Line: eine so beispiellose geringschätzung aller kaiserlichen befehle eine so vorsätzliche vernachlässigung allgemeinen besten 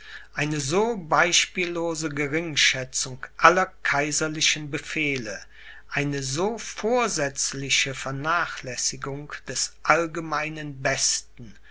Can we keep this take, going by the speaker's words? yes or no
no